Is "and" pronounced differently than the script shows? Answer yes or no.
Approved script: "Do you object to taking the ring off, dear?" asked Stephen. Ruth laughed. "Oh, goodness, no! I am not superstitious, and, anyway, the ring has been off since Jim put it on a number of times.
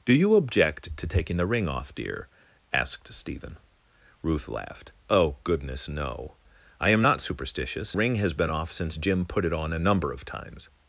yes